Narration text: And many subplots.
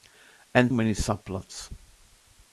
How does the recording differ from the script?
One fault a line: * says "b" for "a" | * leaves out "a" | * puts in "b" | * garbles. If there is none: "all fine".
all fine